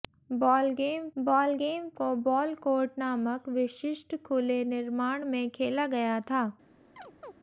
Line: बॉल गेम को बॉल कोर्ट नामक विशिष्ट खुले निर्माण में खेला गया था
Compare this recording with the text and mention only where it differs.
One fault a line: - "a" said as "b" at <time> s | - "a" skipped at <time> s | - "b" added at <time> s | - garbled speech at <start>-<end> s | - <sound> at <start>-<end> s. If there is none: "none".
- "बॉल गेम" added at 1.2 s
- chirp at 7.0-7.4 s